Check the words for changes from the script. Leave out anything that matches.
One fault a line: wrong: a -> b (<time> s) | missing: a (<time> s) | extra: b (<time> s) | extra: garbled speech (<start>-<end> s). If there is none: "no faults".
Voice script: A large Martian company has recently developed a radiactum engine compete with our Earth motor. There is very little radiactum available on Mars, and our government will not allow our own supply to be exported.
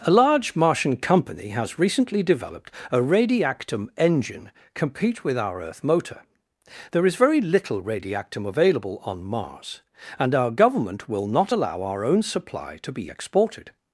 no faults